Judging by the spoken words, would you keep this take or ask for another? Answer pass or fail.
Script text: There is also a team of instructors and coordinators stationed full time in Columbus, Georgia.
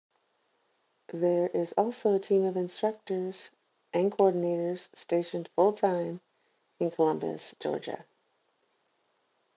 pass